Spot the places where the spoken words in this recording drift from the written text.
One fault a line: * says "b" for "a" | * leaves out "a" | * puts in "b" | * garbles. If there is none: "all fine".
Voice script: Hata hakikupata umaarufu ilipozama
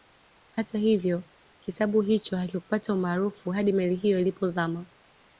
* puts in "hivyo kitabu hicho"
* puts in "hadi meli hiyo"